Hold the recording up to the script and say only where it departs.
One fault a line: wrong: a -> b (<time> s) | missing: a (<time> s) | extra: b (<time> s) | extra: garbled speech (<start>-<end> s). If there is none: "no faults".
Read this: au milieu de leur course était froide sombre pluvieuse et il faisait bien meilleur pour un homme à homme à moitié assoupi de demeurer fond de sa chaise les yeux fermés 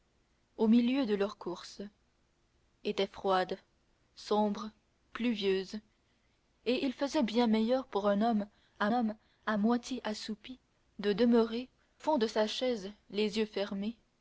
no faults